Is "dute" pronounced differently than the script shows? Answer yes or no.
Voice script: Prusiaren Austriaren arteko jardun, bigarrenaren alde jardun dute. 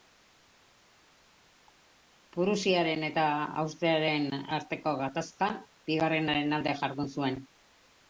yes